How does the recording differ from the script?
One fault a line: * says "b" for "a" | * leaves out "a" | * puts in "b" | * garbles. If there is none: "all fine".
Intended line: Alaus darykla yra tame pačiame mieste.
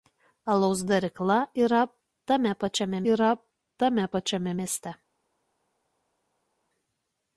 * puts in "yra tame pačiame"